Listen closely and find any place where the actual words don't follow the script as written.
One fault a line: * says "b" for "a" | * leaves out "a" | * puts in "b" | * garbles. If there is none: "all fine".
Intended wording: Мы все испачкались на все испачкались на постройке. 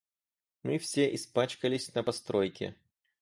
* leaves out "все испачкались на"